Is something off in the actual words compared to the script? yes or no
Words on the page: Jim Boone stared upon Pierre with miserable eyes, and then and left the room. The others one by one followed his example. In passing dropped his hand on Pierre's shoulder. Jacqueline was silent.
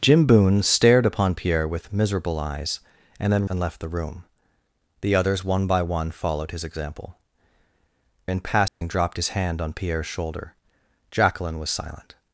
no